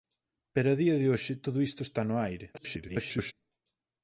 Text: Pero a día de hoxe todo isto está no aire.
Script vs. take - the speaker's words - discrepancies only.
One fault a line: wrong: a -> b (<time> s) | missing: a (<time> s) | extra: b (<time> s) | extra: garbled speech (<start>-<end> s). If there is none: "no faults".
extra: garbled speech (2.5-3.3 s)